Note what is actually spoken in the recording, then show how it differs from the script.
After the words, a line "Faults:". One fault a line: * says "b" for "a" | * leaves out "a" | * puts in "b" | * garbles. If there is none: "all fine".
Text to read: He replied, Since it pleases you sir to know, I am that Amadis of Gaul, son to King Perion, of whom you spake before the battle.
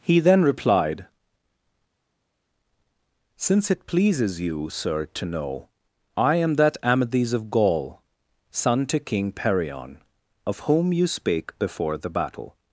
He then replied, Since it pleases you sir to know, I am that Amadis of Gaul, son to King Perion, of whom you spake before the battle.
Faults:
* puts in "then"